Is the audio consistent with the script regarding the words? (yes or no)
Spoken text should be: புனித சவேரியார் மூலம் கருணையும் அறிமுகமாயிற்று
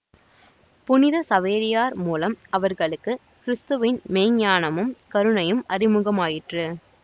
no